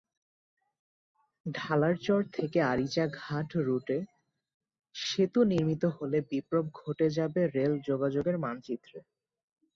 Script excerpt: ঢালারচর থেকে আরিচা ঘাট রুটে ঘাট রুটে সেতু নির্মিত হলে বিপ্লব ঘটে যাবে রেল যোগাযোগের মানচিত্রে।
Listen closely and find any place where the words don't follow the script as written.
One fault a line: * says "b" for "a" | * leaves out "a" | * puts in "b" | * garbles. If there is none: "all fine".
* leaves out "ঘাট রুটে"